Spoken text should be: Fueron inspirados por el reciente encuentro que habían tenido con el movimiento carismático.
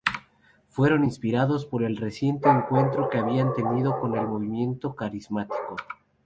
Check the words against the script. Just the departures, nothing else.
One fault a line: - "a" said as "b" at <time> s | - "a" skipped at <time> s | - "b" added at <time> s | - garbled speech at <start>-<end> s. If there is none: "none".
none